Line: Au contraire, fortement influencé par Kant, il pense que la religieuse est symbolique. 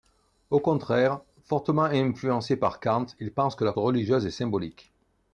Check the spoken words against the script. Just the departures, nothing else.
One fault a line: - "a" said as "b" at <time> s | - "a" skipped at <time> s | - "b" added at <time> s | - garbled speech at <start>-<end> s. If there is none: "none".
none